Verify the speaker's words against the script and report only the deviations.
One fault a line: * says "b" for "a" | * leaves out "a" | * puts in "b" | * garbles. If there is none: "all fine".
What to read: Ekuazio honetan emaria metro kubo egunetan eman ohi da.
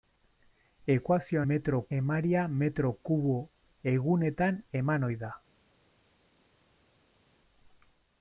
* says "metro" for "honetan"